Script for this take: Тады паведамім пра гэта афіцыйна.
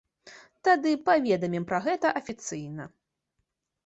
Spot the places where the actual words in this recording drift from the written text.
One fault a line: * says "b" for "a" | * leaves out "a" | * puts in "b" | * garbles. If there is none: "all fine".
all fine